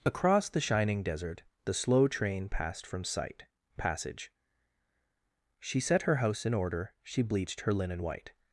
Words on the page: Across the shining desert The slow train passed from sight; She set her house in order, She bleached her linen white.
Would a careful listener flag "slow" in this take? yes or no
no